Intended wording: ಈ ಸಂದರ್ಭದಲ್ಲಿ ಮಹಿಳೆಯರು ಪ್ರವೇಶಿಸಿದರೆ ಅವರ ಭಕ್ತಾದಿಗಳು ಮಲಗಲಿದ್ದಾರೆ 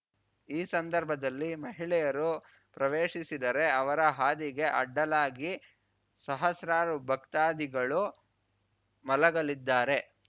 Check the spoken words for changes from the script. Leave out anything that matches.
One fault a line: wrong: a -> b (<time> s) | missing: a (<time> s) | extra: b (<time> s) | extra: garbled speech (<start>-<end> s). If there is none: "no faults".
extra: ಹಾದಿಗೆ ಅಡ್ಡಲಾಗಿ ಸಹಸ್ರಾರು (4.2 s)